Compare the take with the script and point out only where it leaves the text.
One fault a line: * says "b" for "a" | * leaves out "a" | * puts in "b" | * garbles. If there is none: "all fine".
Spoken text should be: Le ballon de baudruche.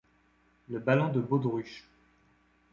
all fine